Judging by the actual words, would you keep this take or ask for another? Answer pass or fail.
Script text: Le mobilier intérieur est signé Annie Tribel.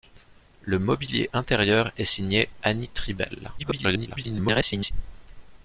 fail